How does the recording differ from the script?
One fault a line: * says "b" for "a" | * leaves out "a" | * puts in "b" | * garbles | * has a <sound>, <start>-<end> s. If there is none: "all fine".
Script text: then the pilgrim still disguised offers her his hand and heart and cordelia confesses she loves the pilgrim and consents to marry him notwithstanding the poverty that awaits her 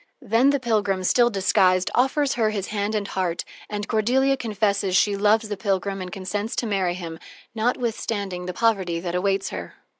all fine